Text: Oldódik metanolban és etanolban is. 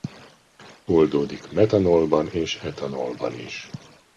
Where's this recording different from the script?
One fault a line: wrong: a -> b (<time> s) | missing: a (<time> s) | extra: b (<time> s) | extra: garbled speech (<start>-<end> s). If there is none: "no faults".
no faults